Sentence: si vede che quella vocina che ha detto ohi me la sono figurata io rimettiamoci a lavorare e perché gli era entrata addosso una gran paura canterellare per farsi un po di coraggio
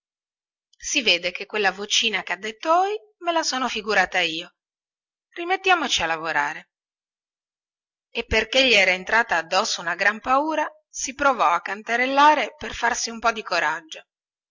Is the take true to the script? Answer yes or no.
no